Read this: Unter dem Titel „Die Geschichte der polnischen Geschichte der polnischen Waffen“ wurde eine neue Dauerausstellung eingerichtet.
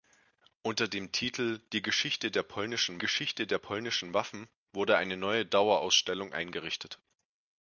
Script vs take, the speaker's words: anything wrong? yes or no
no